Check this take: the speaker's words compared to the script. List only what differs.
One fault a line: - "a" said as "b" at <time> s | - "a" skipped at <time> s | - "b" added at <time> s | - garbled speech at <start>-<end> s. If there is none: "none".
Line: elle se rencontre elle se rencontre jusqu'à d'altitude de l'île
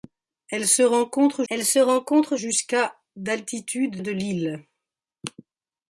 none